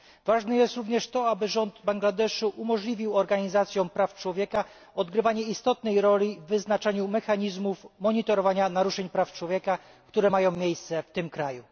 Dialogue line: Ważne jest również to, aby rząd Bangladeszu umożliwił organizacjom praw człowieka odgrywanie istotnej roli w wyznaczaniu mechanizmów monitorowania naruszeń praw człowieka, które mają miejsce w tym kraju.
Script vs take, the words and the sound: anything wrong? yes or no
no